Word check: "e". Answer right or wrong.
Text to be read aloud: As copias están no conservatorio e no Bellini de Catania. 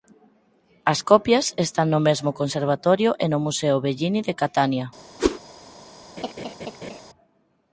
right